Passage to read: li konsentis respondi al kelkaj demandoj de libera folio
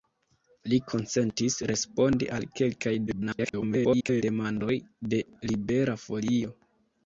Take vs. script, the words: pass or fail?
fail